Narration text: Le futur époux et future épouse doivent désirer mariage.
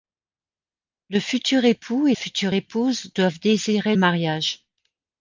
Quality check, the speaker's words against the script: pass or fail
pass